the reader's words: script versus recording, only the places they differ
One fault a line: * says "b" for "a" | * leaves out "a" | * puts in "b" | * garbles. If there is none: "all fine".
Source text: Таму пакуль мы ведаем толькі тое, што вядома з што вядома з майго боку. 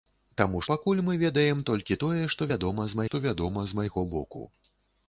all fine